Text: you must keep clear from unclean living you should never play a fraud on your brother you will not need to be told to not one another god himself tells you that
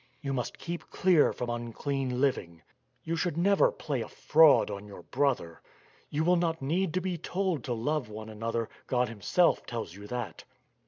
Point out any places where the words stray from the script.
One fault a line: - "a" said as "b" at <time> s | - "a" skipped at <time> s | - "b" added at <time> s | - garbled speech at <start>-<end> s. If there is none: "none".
- "not" said as "love" at 7.7 s